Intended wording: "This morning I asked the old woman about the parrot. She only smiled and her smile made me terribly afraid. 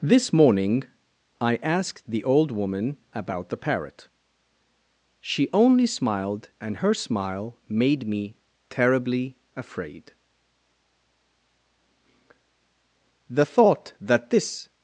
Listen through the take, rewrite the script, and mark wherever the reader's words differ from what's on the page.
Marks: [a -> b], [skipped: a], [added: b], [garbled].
"This morning I asked the old woman about the parrot. She only smiled and her smile made me terribly afraid. [added: The thought that this]